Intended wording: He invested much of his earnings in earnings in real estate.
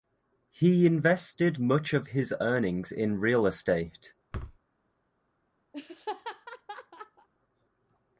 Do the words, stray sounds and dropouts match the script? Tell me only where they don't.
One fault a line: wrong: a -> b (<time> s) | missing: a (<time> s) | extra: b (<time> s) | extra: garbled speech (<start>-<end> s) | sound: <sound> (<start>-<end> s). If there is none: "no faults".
missing: earnings in (3.2 s)
sound: thud (4.3-4.6 s)
sound: laugh (5.7-7.3 s)